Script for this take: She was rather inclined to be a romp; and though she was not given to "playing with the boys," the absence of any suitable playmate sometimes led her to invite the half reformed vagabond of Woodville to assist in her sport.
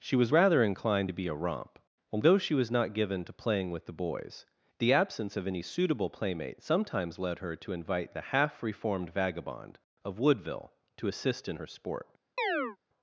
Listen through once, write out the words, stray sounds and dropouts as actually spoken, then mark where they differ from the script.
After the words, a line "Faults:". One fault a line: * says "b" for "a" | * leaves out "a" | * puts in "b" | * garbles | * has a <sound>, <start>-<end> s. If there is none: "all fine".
She was rather inclined to be a romp; although she was not given to "playing with the boys," the absence of any suitable playmate sometimes led her to invite the half reformed vagabond of Woodville to assist in her sport.
Faults:
* says "although" for "and though"
* has a chirp, 12.4-12.8 s